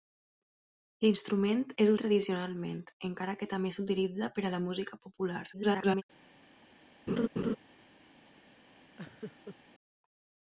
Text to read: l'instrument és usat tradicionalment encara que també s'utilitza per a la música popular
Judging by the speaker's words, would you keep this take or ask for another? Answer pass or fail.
fail